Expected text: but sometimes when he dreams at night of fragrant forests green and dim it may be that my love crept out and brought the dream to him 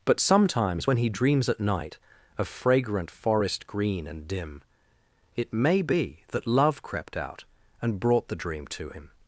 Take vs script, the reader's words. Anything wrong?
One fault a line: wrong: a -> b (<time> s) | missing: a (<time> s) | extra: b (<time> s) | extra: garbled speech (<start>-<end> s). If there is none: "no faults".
wrong: forests -> forest (3.1 s)
missing: my (6.5 s)